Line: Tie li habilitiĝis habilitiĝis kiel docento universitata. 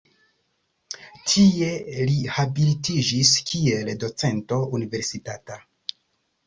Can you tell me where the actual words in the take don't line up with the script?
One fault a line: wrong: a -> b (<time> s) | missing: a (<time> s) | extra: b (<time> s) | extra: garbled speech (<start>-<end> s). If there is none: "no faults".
missing: habilitiĝis (3.4 s)